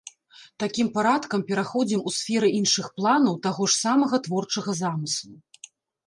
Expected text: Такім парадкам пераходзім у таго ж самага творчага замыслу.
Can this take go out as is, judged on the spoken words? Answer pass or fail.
fail